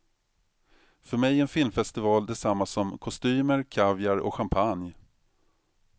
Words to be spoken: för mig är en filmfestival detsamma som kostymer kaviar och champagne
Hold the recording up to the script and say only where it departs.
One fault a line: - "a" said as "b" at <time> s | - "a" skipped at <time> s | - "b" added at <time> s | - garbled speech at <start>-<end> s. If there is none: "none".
none